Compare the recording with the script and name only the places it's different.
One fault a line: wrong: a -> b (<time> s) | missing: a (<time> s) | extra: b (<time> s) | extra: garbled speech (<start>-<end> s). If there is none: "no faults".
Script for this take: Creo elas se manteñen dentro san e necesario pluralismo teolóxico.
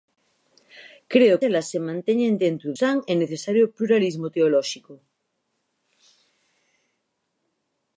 no faults